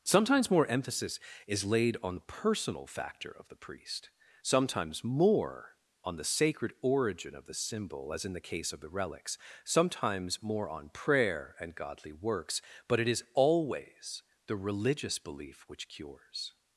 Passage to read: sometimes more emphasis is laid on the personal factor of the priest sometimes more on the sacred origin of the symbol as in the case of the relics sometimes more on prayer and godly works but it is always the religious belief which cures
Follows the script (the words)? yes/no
yes